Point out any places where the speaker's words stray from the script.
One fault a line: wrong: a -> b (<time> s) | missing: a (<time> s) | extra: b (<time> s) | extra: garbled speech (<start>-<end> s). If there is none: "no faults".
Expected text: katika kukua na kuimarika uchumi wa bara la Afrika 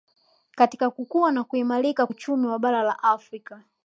no faults